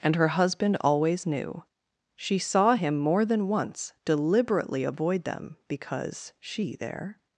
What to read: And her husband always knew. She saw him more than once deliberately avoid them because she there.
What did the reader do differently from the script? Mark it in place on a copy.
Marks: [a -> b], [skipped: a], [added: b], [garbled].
And her husband always knew. She saw him more than once deliberately avoid them because she there.